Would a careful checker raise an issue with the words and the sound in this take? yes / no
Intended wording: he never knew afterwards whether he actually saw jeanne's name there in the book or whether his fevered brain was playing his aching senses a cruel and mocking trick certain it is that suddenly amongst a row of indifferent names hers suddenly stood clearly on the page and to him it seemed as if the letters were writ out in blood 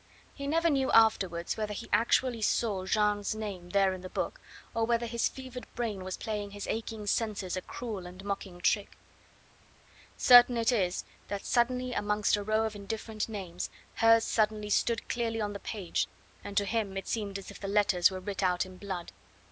no